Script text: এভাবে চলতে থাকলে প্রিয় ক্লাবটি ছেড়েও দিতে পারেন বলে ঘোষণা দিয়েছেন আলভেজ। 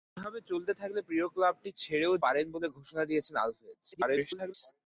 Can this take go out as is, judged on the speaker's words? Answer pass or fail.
fail